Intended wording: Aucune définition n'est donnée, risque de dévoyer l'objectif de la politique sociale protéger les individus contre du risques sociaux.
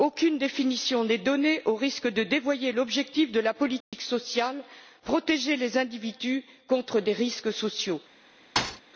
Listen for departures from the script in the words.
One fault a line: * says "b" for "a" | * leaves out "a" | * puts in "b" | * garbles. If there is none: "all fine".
* puts in "au"
* says "des" for "du"